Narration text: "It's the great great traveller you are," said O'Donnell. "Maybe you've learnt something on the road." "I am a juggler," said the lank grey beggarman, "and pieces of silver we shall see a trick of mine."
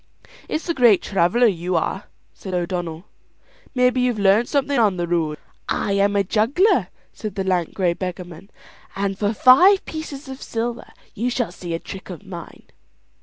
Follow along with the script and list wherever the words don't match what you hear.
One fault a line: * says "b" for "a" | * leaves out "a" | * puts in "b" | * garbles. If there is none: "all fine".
* leaves out "great"
* puts in "for five"
* says "you" for "we"